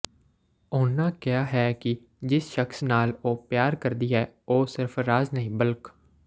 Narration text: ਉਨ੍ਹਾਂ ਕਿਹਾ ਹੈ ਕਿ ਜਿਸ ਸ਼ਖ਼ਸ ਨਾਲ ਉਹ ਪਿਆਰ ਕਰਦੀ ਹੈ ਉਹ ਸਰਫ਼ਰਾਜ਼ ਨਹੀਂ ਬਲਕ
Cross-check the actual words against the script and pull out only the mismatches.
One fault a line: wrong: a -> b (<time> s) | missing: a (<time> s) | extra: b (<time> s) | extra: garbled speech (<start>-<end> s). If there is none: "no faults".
no faults